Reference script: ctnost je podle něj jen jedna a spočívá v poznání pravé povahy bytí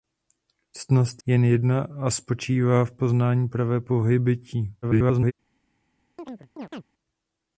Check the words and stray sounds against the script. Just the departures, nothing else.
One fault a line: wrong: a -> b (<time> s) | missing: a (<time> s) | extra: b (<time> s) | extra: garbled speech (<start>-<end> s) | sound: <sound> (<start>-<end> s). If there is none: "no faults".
missing: je podle něj (1.2 s)
extra: garbled speech (4.8-5.3 s)
sound: chirp (6.2-6.8 s)